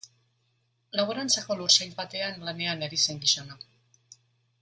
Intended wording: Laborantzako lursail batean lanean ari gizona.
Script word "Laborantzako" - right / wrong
right